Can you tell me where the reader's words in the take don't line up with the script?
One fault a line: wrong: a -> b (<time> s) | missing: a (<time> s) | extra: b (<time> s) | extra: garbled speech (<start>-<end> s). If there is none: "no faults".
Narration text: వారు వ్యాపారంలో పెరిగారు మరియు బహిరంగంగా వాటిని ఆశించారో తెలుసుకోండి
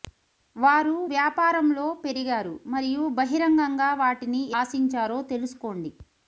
no faults